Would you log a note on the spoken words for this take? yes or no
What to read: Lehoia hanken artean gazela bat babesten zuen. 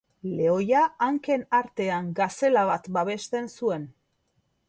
no